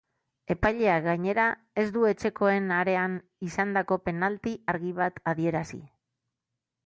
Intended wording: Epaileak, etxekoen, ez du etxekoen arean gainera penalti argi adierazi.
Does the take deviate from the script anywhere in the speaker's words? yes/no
yes